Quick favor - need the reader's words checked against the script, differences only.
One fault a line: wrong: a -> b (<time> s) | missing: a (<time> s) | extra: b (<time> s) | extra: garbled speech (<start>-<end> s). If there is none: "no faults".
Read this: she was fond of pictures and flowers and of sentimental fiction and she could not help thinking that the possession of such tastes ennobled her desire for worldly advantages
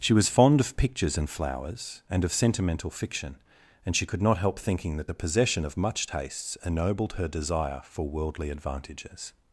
wrong: such -> much (5.7 s)